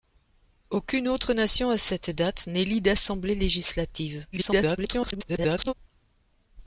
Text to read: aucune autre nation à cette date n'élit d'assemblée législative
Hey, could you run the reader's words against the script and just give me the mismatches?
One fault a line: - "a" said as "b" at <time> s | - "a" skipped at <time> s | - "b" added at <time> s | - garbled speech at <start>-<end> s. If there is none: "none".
- garbled speech at 4.3-5.7 s